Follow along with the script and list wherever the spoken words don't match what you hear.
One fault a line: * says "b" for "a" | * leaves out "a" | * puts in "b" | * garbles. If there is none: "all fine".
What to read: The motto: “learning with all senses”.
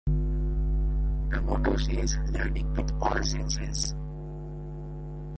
* puts in "says"